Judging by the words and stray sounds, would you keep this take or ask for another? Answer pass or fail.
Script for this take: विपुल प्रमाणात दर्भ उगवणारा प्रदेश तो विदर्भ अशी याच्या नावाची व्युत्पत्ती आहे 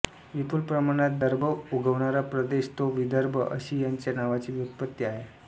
pass